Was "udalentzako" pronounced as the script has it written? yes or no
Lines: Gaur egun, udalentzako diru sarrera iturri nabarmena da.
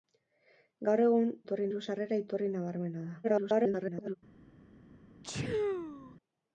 no